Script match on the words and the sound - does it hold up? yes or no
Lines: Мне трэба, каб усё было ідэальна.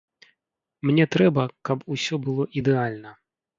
yes